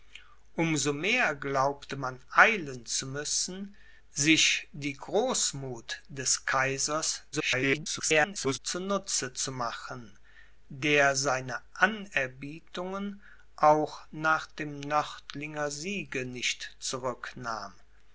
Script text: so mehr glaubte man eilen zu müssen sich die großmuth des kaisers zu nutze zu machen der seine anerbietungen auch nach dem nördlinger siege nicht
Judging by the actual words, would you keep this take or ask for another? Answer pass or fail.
fail